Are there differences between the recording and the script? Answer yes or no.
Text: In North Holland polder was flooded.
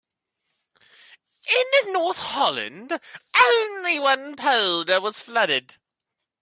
yes